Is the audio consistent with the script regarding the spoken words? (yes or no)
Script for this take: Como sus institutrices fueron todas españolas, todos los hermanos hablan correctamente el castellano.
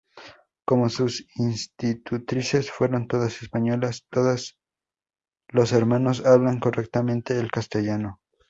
yes